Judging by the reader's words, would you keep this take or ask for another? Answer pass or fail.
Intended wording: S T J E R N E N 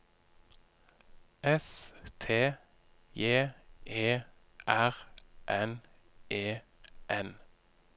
pass